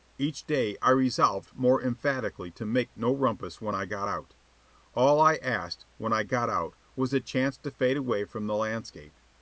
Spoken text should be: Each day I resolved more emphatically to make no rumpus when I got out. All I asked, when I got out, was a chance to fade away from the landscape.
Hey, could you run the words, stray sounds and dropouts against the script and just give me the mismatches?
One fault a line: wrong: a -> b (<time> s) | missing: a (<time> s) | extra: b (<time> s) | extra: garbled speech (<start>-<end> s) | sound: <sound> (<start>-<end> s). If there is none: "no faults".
no faults